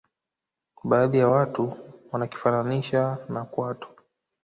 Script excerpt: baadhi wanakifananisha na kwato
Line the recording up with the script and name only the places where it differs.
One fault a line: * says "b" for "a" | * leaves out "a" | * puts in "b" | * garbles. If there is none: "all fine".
* puts in "ya watu"